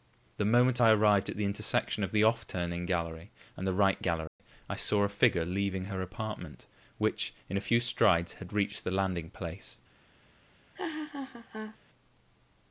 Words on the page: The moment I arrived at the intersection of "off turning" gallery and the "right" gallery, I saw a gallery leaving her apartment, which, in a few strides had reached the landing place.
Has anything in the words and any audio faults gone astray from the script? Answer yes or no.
yes